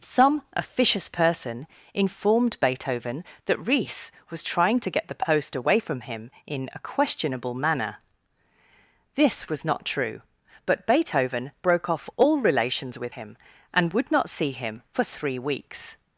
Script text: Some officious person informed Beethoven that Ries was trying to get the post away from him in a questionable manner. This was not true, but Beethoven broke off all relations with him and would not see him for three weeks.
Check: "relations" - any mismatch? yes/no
no